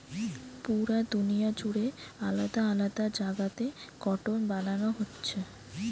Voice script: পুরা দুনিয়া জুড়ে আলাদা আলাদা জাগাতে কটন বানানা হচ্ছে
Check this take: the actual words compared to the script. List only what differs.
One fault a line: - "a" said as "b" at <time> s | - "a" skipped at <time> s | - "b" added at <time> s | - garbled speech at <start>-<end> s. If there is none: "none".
none